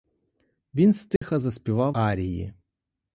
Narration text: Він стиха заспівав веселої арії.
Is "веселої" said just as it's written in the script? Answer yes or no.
no